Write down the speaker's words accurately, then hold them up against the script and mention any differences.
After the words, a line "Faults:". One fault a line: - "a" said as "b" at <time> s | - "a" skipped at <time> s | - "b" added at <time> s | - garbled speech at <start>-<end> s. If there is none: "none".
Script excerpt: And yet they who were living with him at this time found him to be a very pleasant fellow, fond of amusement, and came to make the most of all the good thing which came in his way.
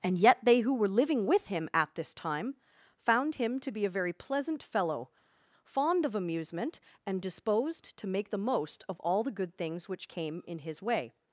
And yet they who were living with him at this time found him to be a very pleasant fellow, fond of amusement, and disposed to make the most of all the good things which came in his way.
Faults:
- "came" said as "disposed" at 7.2 s
- "thing" said as "things" at 9.6 s